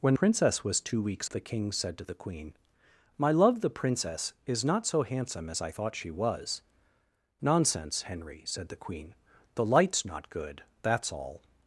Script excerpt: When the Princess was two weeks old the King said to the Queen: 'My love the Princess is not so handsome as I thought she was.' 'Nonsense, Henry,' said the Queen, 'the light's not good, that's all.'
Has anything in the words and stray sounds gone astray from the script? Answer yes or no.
yes